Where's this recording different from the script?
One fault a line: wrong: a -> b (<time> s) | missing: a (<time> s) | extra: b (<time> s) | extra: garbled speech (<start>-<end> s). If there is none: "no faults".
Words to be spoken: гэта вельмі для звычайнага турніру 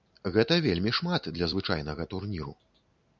extra: шмат (1.0 s)